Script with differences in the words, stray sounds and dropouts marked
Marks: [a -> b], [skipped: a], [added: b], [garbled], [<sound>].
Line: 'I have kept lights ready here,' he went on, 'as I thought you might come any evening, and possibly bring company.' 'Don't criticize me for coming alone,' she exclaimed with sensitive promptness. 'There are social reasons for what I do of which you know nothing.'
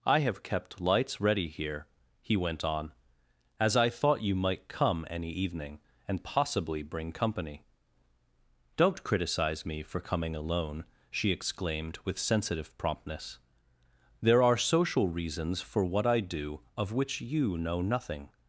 'I have kept lights ready here,' he went on, 'as I thought you might come any evening, and possibly bring company.' 'Don't criticize me for coming alone,' she exclaimed with sensitive promptness. 'There are social reasons for what I do of which you know nothing.'